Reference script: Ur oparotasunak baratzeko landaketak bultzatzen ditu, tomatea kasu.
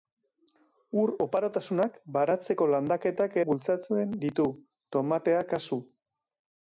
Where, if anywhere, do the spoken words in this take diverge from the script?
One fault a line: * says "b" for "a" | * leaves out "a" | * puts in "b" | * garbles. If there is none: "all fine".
all fine